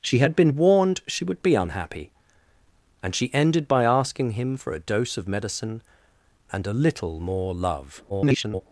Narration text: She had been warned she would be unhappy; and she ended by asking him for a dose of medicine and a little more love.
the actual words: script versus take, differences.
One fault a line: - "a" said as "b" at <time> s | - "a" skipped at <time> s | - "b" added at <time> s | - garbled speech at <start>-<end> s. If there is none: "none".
- garbled speech at 8.1-8.6 s